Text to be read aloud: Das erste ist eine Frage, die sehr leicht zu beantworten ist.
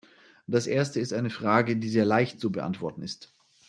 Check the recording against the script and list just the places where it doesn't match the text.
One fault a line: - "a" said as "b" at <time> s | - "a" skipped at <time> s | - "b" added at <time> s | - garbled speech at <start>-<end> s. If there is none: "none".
none